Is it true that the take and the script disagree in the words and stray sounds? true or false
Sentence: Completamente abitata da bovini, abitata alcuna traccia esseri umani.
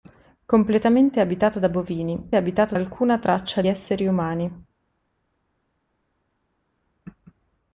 false